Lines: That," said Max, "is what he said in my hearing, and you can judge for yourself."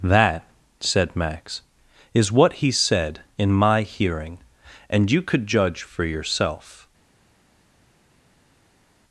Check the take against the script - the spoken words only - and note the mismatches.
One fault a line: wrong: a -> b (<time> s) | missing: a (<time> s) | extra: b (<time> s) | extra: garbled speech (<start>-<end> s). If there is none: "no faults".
wrong: can -> could (5.2 s)